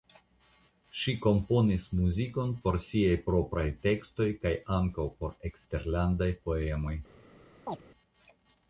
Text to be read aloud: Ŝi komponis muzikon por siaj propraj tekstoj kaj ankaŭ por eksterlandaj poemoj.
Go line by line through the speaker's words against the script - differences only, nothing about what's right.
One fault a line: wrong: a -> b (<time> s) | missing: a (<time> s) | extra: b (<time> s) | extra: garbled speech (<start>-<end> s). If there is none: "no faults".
no faults